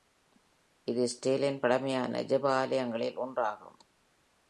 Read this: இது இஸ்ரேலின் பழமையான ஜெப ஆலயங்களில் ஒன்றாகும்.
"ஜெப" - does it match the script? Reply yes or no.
yes